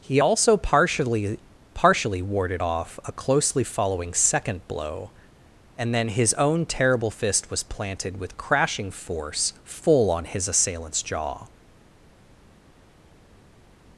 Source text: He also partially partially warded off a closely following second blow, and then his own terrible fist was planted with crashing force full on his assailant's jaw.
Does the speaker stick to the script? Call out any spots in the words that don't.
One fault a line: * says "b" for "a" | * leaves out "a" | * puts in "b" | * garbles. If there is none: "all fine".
all fine